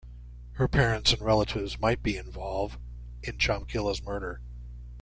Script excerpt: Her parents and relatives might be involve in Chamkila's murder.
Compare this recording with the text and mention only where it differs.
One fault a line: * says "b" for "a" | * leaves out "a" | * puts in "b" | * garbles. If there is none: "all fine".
all fine